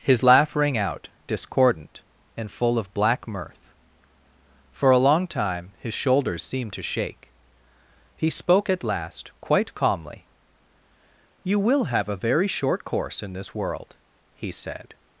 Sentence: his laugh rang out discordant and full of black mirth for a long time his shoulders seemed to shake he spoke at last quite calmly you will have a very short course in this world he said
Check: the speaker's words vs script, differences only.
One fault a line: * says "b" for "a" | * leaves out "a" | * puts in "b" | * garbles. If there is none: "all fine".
all fine